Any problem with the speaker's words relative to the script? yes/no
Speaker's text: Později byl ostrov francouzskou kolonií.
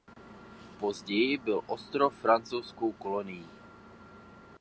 no